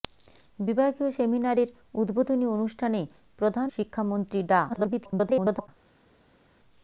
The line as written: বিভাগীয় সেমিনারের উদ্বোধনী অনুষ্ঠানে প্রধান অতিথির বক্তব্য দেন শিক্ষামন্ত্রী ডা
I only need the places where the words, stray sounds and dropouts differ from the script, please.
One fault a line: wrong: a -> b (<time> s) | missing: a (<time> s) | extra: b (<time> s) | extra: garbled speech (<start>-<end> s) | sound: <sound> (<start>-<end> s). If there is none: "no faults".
missing: অতিথির বক্তব্য দেন (3.7 s)
extra: garbled speech (4.7-5.7 s)